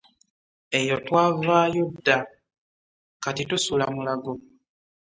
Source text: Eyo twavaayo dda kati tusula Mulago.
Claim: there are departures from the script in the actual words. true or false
false